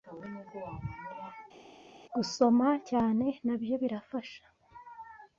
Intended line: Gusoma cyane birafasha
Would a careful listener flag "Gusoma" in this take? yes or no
no